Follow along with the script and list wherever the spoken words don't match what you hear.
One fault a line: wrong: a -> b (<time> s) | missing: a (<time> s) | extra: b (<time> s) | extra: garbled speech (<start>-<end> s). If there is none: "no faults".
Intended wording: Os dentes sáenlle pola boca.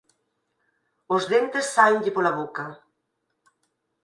no faults